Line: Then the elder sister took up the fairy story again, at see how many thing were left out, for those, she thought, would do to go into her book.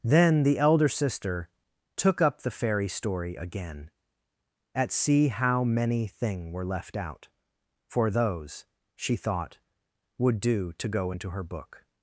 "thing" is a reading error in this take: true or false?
false